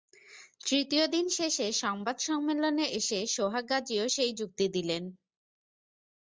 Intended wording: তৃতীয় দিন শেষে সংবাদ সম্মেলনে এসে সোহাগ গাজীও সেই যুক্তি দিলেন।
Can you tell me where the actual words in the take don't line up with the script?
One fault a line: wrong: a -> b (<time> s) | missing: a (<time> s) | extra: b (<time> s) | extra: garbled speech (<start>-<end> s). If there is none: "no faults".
no faults